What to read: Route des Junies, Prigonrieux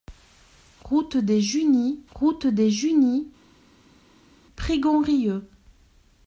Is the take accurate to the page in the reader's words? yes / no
no